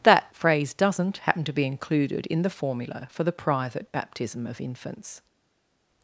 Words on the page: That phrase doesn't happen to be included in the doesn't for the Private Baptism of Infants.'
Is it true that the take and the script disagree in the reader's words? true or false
true